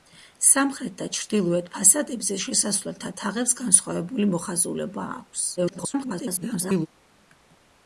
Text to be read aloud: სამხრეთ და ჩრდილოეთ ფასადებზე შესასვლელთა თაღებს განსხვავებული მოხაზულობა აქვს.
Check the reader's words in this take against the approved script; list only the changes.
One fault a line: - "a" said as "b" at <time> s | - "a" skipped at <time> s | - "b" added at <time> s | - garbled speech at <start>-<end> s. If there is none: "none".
- garbled speech at 5.6-6.9 s